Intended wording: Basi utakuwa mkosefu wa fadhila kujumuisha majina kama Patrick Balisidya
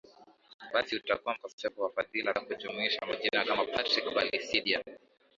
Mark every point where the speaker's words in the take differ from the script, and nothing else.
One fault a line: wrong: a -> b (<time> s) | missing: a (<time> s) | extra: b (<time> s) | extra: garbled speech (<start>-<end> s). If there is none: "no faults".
no faults